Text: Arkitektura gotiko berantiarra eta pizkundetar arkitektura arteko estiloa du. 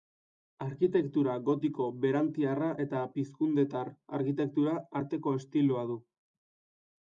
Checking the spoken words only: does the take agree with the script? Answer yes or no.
yes